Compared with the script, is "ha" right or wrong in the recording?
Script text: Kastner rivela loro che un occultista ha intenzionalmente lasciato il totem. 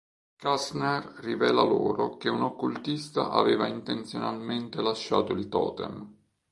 wrong